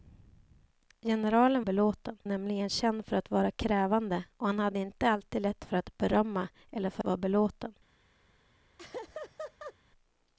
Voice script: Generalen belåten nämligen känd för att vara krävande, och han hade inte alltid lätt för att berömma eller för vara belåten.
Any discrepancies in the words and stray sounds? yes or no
yes